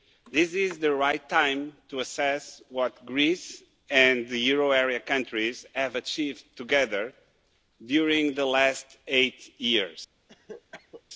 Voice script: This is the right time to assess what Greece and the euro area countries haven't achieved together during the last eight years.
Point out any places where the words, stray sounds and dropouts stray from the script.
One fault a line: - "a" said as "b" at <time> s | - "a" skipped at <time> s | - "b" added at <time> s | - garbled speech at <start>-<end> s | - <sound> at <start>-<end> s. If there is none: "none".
- "haven't" said as "have" at 5.7 s
- cough at 10.3-11.0 s